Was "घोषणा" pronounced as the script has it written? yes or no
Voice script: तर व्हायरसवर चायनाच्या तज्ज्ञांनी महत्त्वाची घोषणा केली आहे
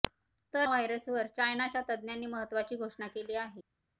yes